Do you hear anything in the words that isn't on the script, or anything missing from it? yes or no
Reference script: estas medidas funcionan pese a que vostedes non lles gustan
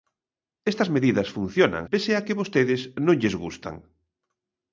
no